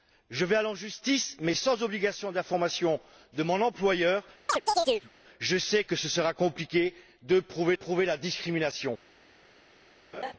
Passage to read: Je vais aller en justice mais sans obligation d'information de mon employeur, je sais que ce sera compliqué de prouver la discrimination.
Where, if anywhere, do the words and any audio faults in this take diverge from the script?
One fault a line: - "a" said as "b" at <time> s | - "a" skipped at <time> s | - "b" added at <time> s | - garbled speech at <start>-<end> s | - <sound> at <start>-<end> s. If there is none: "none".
- chirp at 4.5-5.1 s
- "prouver" added at 7.7 s
- laugh at 10.1-10.3 s